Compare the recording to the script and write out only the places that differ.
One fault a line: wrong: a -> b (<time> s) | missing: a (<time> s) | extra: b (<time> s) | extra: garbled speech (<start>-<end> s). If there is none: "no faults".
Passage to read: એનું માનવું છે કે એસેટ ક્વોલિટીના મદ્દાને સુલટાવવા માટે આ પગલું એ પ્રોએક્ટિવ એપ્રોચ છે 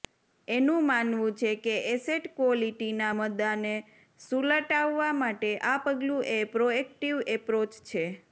no faults